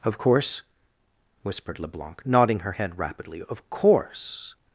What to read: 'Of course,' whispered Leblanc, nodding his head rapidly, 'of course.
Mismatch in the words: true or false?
true